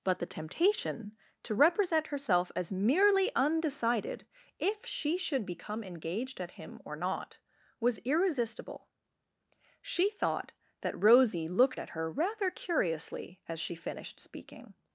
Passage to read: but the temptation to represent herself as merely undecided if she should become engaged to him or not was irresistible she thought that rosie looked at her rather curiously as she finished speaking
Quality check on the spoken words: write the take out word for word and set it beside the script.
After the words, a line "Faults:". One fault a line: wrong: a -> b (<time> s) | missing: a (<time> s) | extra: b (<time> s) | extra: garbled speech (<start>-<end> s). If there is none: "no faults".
but the temptation to represent herself as merely undecided if she should become engaged at him or not was irresistible she thought that rosie looked at her rather curiously as she finished speaking
Faults:
wrong: to -> at (6.4 s)